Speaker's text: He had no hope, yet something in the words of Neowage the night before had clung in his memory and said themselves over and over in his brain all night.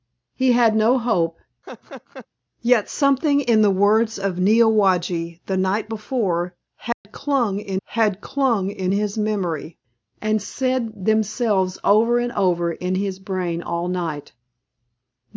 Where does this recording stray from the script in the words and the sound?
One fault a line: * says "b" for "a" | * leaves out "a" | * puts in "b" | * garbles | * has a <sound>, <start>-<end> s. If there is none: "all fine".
* has a laugh, 1.6-2.3 s
* has a dropout, 6.9-7.1 s
* puts in "had clung in"